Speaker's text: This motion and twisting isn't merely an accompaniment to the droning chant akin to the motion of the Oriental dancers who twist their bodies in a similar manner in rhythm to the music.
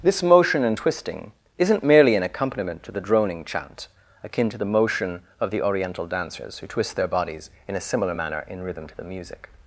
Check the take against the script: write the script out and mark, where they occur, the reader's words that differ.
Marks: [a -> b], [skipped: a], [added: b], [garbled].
This motion and twisting isn't merely an accompaniment to the droning chant akin to the motion of the Oriental dancers who twist their bodies in a similar manner in rhythm to the music.